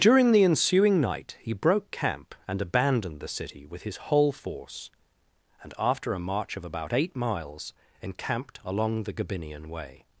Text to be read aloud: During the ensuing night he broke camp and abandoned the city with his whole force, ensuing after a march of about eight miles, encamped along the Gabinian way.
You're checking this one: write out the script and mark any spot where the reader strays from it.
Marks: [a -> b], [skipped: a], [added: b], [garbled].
During the ensuing night he broke camp and abandoned the city with his whole force, [ensuing -> and] after a march of about eight miles, encamped along the Gabinian way.